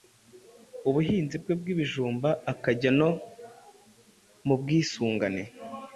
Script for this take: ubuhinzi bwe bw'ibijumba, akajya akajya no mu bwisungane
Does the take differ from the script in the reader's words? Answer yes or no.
yes